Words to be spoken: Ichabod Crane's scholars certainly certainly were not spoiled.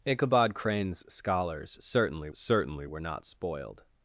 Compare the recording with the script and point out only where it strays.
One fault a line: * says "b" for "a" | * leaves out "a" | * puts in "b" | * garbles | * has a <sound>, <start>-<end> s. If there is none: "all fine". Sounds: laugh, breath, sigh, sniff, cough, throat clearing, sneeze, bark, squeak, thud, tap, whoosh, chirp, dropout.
all fine